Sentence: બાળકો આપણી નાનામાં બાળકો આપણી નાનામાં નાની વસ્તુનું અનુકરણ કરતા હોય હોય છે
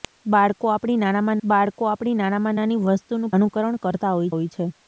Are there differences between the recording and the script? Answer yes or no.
no